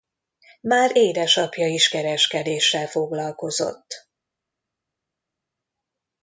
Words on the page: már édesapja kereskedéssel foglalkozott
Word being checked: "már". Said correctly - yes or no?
yes